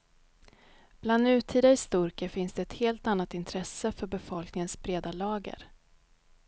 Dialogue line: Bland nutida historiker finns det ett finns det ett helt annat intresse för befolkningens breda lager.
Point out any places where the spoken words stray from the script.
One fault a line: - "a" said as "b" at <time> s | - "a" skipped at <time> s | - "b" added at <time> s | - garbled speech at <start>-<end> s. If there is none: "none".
- "finns det ett" skipped at 2.7 s